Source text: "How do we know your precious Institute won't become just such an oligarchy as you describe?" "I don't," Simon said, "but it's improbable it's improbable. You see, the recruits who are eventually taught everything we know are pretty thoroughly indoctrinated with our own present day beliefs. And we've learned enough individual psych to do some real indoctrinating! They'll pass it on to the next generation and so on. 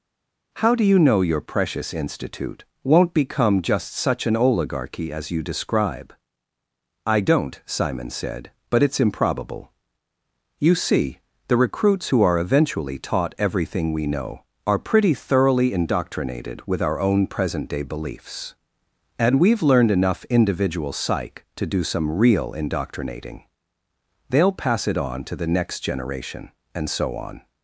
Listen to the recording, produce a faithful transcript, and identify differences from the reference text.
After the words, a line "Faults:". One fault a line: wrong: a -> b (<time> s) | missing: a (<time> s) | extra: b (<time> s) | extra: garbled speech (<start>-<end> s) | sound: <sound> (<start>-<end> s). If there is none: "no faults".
"How do you know your precious Institute won't become just such an oligarchy as you describe?" "I don't," Simon said, "but it's improbable. You see, the recruits who are eventually taught everything we know are pretty thoroughly indoctrinated with our own present day beliefs. And we've learned enough individual psych to do some real indoctrinating! They'll pass it on to the next generation and so on.
Faults:
wrong: we -> you (0.8 s)
missing: it's improbable (9.7 s)